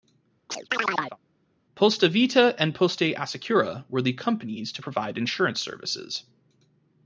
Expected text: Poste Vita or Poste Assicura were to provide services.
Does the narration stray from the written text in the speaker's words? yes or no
yes